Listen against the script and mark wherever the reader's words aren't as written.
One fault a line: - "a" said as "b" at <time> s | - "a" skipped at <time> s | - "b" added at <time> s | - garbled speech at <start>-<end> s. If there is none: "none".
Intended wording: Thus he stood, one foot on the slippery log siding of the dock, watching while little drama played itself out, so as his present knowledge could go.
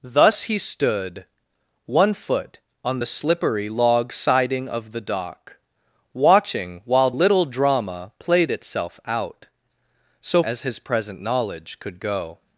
none